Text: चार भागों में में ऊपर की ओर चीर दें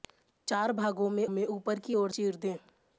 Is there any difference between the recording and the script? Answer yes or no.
no